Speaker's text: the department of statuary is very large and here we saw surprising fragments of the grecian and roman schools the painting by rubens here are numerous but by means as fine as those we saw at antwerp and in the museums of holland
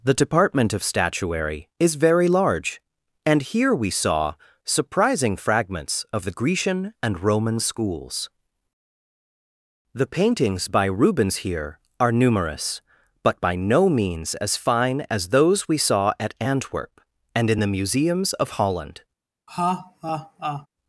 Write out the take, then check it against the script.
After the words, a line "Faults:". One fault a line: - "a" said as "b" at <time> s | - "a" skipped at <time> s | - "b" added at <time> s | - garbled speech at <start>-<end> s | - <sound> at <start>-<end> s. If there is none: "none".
the department of statuary is very large and here we saw surprising fragments of the grecian and roman schools the paintings by rubens here are numerous but by no means as fine as those we saw at antwerp and in the museums of holland
Faults:
- "painting" said as "paintings" at 10.1 s
- "no" added at 13.6 s
- laugh at 19.5-20.7 s